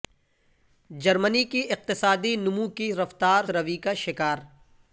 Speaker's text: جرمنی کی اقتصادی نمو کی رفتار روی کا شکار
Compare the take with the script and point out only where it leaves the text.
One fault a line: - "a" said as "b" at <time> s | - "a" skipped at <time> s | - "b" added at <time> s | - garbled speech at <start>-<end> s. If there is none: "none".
none